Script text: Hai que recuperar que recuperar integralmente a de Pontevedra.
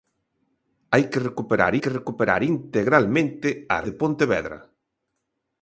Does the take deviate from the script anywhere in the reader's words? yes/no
no